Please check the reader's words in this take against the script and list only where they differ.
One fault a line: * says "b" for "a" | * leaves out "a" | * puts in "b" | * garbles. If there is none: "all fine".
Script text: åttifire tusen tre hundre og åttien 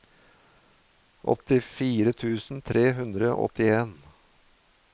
all fine